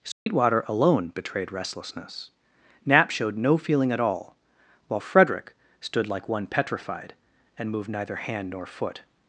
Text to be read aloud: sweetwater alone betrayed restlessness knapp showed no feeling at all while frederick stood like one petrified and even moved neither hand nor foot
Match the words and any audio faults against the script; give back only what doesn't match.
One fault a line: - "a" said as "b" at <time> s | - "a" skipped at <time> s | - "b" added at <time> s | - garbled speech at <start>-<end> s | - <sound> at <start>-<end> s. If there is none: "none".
- dropout at 0.1-0.3 s
- "even" skipped at 7.7 s